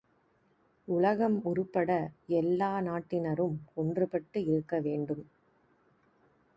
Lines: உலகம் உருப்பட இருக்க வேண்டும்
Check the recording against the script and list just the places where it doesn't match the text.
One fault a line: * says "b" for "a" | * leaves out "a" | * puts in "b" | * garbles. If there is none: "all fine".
* puts in "எல்லா நாட்டினரும் ஒன்றுபட்டு"